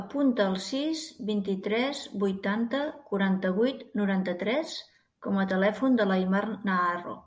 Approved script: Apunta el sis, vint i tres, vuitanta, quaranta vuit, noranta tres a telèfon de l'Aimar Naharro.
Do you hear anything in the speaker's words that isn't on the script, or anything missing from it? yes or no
yes